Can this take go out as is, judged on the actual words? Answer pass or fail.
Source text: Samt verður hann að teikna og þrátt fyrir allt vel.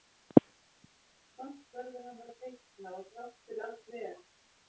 pass